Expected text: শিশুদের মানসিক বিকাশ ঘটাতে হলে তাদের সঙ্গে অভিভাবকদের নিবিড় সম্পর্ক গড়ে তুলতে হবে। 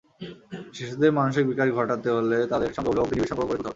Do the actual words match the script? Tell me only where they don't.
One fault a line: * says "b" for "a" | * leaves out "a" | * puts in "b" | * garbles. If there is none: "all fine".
all fine